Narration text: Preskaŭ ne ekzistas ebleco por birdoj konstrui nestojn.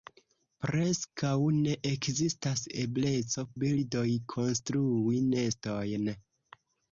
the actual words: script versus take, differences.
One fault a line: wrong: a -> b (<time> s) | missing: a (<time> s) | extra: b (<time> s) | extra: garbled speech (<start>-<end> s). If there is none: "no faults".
missing: por (3.5 s)